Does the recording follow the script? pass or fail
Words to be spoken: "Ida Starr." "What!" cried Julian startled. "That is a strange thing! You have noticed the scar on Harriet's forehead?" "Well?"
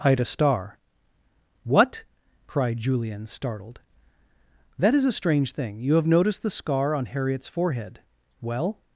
pass